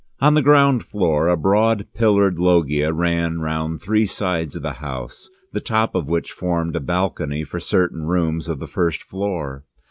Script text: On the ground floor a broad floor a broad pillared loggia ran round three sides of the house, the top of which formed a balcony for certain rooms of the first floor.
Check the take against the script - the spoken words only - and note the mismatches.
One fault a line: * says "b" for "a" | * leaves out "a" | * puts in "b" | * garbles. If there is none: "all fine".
* leaves out "floor a broad"